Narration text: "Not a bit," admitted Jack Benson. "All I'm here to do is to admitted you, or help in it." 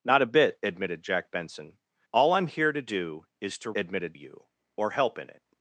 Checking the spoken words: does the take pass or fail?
pass